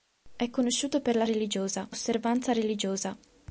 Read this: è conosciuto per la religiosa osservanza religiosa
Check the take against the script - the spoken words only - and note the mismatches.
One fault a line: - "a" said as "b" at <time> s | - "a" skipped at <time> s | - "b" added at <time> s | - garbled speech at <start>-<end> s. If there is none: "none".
none